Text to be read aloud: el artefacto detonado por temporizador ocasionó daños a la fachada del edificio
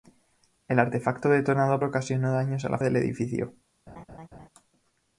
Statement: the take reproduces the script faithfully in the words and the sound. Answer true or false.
false